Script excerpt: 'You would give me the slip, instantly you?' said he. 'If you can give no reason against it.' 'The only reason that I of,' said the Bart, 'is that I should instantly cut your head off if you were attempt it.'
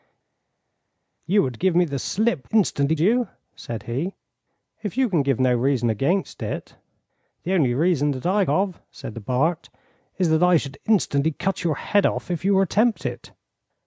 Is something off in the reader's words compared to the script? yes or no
no